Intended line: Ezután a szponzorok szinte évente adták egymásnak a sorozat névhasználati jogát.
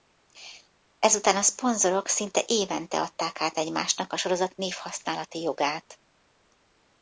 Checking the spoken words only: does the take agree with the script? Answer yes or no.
no